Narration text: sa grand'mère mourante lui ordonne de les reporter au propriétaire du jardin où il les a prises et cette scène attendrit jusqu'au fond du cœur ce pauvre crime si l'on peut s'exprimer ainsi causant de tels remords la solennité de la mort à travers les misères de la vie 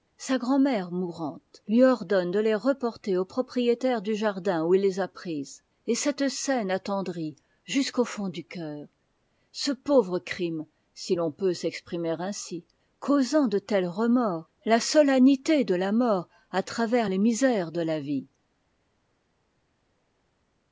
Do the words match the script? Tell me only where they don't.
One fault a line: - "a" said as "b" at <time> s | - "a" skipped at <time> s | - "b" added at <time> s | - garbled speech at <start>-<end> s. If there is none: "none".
none